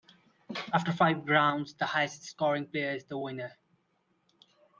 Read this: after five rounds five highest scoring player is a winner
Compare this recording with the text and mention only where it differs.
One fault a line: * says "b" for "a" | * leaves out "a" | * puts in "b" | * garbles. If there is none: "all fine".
* says "the" for "five"
* says "the" for "a"